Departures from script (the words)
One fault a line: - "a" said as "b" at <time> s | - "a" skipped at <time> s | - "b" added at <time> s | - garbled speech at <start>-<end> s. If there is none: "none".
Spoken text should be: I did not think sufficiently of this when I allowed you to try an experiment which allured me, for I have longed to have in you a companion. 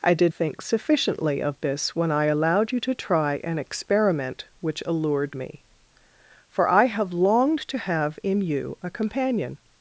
- "not" skipped at 0.3 s